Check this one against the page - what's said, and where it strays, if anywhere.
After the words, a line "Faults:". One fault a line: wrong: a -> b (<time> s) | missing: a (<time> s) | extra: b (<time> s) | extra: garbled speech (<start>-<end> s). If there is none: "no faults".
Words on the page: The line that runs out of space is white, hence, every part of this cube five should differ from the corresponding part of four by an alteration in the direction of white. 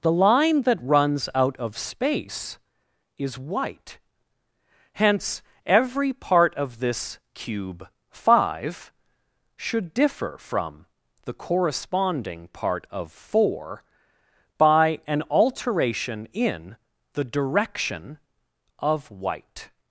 The line that runs out of space is white, hence, every part of this cube five should differ from the corresponding part of four by an alteration in the direction of white.
Faults:
no faults